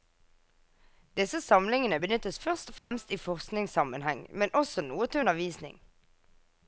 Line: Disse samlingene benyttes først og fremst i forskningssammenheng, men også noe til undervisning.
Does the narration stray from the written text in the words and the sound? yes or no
yes